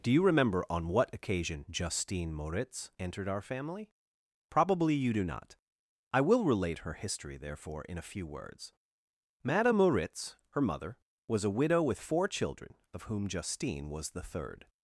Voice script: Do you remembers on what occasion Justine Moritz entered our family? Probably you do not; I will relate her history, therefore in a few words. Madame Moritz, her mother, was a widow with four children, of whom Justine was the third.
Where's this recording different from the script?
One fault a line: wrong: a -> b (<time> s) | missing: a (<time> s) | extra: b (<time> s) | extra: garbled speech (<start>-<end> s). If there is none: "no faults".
wrong: remembers -> remember (0.2 s)